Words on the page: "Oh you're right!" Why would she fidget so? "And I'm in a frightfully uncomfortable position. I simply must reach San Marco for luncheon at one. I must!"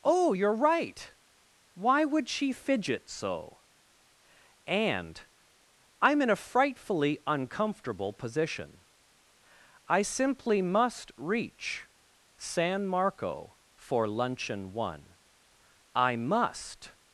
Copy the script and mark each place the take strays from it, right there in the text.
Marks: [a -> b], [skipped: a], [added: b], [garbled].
"Oh you're right!" Why would she fidget so? "And I'm in a frightfully uncomfortable position. I simply must reach San Marco for luncheon [skipped: at] one. I must!"